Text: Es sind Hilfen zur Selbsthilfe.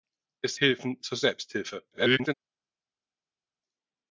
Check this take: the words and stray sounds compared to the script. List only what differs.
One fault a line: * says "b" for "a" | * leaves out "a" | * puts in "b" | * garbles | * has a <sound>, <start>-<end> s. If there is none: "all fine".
* leaves out "sind"
* garbles